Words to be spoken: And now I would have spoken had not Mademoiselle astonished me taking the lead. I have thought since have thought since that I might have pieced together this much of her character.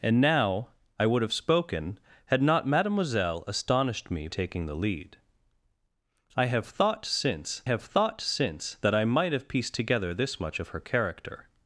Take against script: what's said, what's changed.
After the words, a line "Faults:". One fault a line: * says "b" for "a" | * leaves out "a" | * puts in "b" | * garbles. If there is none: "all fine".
And now I would have spoken had not Mademoiselle astonished me taking the lead. I have thought since have thought since that I might have pieced together this much of her character.
Faults:
all fine